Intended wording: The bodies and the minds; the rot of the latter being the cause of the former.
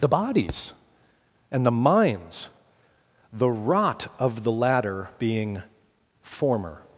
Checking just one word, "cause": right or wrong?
wrong